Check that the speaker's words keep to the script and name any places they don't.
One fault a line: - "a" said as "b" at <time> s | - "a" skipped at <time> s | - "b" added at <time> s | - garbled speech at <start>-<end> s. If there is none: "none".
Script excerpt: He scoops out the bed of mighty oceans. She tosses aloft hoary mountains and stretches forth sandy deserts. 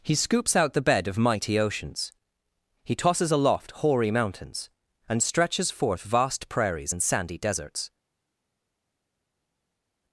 - "She" said as "He" at 2.8 s
- "vast prairies and" added at 6.0 s